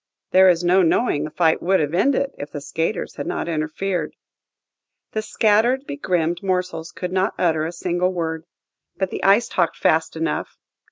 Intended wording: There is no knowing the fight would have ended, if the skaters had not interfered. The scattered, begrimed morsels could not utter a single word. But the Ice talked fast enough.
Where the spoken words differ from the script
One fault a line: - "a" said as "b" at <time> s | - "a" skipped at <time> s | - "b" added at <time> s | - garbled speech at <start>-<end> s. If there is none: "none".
none